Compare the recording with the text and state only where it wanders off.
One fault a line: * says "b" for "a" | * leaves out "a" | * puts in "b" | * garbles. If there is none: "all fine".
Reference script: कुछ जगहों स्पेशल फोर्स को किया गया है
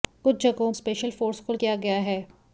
all fine